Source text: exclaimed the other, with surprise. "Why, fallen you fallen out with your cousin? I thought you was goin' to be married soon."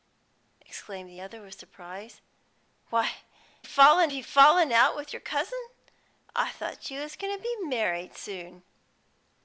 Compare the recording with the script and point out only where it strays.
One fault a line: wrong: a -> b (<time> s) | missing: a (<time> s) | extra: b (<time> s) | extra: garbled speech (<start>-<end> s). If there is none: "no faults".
no faults